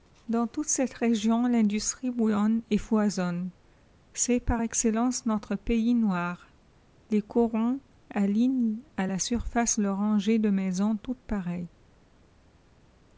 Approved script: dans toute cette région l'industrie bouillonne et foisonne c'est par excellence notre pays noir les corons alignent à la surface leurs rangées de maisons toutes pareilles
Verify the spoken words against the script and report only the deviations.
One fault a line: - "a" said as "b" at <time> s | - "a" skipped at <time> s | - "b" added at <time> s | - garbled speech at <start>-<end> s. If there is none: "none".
none